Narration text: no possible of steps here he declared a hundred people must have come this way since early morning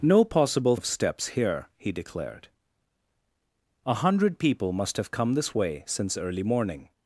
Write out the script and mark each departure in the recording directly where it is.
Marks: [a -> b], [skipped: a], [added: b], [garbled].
no possible of steps here he declared a hundred people must have come this way since early morning